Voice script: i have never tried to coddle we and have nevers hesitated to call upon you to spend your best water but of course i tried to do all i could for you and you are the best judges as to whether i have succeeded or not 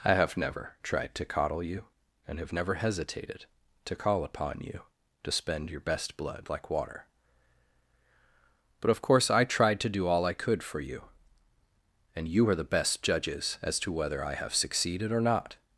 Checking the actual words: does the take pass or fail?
fail